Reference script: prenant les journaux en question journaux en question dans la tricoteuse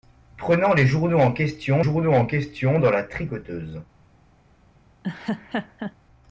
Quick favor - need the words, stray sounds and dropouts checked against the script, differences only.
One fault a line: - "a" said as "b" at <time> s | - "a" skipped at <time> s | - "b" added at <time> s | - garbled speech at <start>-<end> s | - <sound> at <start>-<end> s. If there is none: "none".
- laugh at 5.0-6.0 s